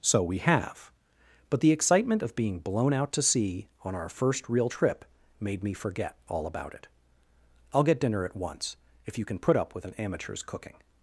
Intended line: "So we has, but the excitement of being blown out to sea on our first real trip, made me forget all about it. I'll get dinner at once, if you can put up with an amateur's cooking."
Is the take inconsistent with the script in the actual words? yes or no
yes